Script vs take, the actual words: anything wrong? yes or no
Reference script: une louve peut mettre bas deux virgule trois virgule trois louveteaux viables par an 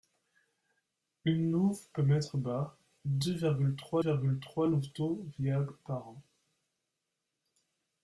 no